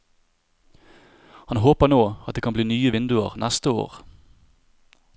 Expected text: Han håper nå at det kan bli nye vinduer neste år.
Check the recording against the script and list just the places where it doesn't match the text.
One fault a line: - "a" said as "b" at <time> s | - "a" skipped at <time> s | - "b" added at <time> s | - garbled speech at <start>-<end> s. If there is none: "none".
none